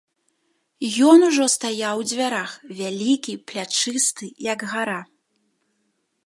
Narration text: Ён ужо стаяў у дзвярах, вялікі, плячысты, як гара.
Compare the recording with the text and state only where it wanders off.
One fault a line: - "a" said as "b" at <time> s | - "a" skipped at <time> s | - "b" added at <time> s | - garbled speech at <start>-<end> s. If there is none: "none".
none